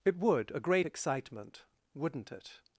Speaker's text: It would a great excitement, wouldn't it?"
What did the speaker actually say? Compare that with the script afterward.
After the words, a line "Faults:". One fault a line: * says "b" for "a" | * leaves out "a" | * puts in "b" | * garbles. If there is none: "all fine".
It would a great excitement, wouldn't it?"
Faults:
all fine